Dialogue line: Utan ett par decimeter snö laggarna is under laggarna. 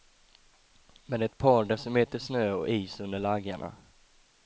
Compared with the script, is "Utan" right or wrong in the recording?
wrong